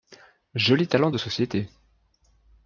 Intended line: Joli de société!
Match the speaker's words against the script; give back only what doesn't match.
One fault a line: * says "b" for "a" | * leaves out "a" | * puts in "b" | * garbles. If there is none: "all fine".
* puts in "talent"